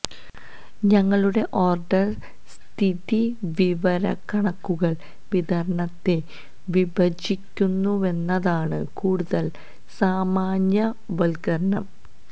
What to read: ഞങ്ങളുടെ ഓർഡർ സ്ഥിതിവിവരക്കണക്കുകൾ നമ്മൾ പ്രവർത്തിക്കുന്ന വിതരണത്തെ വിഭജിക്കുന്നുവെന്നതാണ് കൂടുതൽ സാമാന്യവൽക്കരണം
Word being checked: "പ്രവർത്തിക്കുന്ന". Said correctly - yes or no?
no